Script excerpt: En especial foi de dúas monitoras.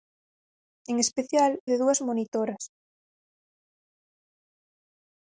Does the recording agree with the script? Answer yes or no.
no